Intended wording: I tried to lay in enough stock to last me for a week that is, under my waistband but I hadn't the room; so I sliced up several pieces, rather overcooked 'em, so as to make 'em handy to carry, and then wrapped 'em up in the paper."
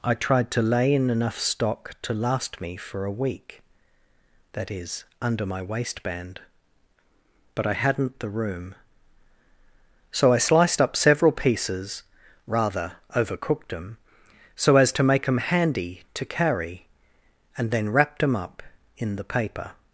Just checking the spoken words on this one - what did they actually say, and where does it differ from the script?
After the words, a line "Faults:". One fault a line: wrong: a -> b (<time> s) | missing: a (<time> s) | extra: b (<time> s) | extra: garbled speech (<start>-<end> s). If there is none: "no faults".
I tried to lay in enough stock to last me for a week that is, under my waistband but I hadn't the room; so I sliced up several pieces, rather overcooked 'em, so as to make 'em handy to carry, and then wrapped 'em up in the paper."
Faults:
no faults